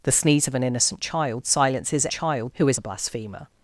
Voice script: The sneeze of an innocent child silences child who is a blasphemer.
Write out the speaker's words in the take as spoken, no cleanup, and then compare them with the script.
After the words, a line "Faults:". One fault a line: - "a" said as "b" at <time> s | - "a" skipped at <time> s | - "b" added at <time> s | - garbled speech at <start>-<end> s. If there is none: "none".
The sneeze of an innocent child silences child who is a blasphemer.
Faults:
none